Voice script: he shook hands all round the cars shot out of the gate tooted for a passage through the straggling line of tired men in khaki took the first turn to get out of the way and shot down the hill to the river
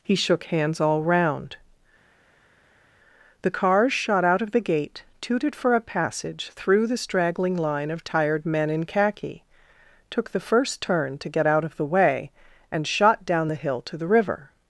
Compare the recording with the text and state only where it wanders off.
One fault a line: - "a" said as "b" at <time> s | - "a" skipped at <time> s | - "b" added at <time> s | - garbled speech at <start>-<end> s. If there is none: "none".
none